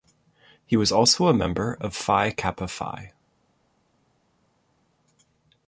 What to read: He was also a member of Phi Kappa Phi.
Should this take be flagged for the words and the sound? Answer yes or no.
no